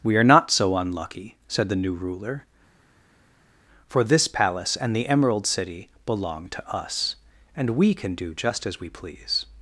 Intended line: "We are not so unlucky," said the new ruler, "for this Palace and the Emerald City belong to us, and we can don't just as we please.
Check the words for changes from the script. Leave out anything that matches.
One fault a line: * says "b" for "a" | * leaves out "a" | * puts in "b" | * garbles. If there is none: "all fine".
* says "do" for "don't"